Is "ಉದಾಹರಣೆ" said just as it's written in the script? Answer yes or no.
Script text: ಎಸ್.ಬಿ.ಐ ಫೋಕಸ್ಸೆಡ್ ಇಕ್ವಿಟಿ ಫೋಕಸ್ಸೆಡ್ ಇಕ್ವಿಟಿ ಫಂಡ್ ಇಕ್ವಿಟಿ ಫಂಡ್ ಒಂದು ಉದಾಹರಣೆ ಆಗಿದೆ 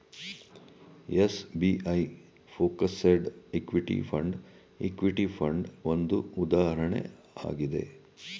yes